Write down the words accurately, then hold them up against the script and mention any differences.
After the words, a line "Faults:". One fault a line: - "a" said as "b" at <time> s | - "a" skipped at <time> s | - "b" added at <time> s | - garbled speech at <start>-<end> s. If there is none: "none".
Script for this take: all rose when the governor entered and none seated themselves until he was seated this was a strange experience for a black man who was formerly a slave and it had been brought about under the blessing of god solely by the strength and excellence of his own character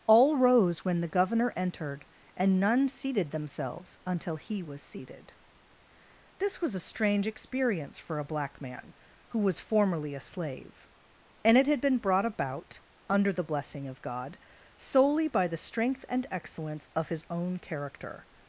all rose when the governor entered and none seated themselves until he was seated this was a strange experience for a black man who was formerly a slave and it had been brought about under the blessing of god solely by the strength and excellence of his own character
Faults:
none